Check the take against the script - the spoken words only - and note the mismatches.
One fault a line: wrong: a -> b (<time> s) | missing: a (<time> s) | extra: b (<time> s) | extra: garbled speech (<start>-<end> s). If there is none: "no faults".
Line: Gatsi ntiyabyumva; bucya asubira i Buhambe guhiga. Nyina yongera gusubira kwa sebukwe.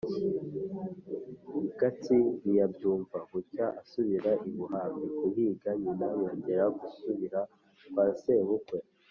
no faults